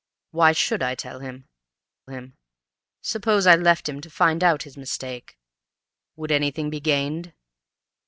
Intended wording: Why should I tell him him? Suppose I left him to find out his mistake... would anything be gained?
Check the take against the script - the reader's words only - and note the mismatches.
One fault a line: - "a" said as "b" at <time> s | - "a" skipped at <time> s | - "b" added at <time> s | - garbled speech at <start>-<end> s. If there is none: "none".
none